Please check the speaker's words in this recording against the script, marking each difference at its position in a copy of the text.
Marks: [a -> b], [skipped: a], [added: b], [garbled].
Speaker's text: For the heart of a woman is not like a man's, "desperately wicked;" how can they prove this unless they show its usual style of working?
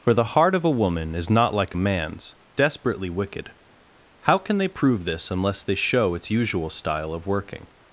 For the heart of a woman is not like a man's, "desperately wicked;" how can they prove this unless they show its usual style of working?